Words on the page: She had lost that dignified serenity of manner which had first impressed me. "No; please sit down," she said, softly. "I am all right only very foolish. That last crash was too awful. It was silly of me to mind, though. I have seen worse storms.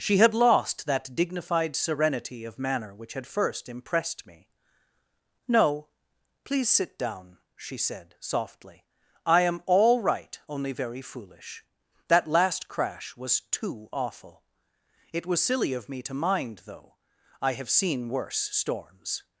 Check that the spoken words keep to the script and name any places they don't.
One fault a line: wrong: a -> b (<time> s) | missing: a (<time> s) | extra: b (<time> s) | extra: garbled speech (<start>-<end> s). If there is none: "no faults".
no faults